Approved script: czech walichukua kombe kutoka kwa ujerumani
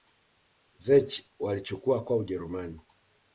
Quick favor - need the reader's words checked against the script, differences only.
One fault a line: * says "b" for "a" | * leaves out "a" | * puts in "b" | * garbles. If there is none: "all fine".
* leaves out "kombe kutoka"